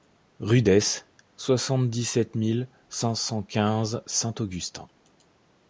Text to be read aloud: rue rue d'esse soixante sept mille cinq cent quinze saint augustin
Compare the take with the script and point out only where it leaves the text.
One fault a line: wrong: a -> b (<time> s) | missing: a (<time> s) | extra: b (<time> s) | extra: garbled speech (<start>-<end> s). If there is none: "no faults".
missing: rue (0.6 s)
extra: dix (1.9 s)